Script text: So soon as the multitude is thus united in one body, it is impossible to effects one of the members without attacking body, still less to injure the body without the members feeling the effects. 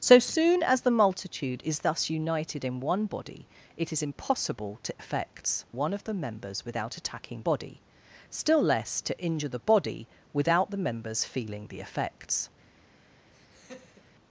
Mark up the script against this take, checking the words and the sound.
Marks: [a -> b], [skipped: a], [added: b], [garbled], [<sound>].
So soon as the multitude is thus united in one body, it is impossible to effects one of the members without attacking body, still less to injure the body without the members feeling the effects. [laugh]